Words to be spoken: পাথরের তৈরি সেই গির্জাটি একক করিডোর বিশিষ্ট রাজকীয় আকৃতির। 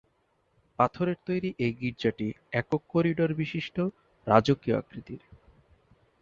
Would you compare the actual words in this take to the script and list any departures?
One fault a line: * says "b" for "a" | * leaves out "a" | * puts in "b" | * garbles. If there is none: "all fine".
* says "এই" for "সেই"